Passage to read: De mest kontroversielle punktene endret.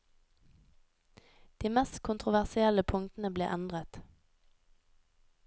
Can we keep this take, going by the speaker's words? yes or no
no